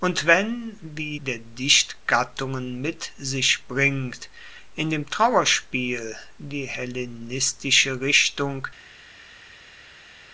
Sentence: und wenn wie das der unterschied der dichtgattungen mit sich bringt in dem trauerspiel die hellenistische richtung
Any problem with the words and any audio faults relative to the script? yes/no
yes